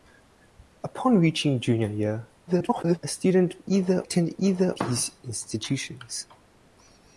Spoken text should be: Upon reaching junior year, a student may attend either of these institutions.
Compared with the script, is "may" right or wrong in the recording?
wrong